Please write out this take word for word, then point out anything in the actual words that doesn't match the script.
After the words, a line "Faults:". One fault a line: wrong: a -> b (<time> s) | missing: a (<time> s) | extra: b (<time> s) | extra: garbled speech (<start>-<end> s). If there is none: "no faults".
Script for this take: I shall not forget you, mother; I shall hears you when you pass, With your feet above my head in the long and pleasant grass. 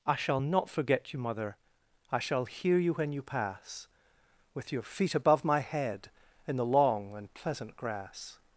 I shall not forget you, mother; I shall hear you when you pass, With your feet above my head in the long and pleasant grass.
Faults:
wrong: hears -> hear (2.5 s)